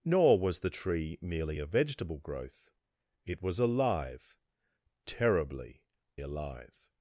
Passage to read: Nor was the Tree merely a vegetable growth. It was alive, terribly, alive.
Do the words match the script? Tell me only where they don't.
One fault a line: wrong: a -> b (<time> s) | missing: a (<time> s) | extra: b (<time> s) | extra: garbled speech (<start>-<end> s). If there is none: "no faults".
no faults